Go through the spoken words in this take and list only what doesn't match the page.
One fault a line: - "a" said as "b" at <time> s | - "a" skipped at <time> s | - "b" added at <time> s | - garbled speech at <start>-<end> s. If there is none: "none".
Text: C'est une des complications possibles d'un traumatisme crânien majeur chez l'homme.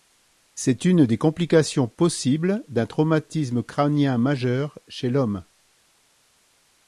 none